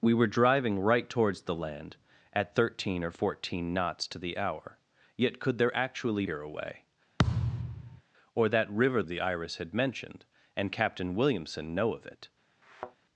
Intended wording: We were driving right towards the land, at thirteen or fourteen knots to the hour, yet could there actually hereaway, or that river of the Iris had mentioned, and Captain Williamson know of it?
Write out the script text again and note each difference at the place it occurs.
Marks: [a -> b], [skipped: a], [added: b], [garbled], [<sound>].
We were driving right towards the land, at thirteen or fourteen knots to the hour, yet could there actually hereaway, [thud] or that river of the Iris had mentioned, and Captain Williamson know of it? [thud]